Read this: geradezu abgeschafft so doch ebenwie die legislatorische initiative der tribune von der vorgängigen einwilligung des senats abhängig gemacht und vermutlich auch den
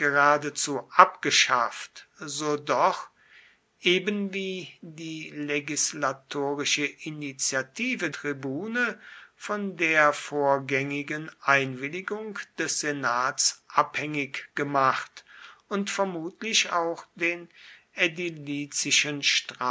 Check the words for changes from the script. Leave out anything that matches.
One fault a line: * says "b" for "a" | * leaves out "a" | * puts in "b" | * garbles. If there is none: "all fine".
* leaves out "der"